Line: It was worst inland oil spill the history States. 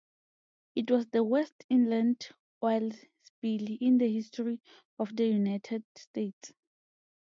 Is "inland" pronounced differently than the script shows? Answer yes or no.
no